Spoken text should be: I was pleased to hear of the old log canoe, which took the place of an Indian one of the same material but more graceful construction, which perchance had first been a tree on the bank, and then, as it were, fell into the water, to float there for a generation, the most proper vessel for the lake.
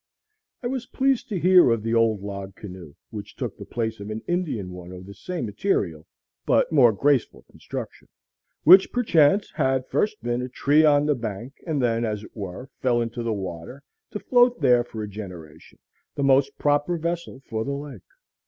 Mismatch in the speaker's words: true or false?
false